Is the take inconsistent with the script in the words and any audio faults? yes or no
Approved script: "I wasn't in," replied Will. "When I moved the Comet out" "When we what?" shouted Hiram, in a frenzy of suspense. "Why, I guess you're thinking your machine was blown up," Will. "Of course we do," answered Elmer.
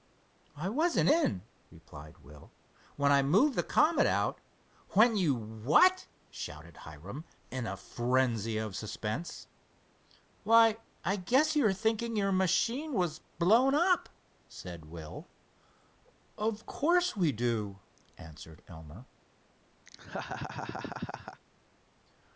yes